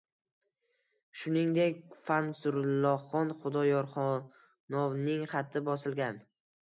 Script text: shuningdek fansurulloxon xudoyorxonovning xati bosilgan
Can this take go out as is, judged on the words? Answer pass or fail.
pass